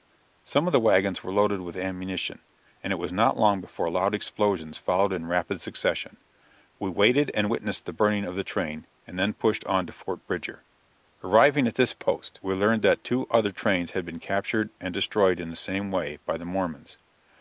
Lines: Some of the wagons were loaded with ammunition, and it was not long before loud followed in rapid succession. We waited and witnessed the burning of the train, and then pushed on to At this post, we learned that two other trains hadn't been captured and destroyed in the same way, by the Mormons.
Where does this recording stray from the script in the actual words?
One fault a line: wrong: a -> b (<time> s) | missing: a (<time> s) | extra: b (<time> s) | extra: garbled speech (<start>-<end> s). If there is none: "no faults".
extra: explosions (4.2 s)
extra: Fort Bridger Arriving (9.9 s)
wrong: hadn't -> had (13.9 s)